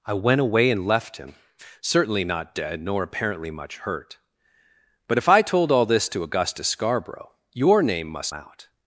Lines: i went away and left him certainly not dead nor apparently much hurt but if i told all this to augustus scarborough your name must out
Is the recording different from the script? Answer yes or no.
no